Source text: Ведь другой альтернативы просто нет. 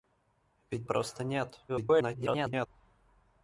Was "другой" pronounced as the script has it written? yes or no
no